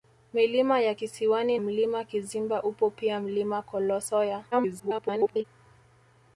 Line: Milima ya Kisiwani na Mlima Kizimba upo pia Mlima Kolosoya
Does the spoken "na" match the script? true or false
false